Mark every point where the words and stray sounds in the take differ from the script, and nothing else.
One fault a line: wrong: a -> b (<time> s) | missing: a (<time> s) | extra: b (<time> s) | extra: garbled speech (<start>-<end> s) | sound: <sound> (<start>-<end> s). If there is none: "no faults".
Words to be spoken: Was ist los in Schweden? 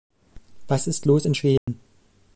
sound: dropout (1.6-1.7 s)